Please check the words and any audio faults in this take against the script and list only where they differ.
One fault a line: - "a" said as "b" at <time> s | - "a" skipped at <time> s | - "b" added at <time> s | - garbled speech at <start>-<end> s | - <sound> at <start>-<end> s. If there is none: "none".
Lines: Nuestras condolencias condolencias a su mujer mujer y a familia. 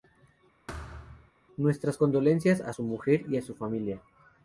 - thud at 0.7-1.3 s
- "condolencias" skipped at 2.6 s
- "mujer" skipped at 3.2 s
- "su" added at 3.4 s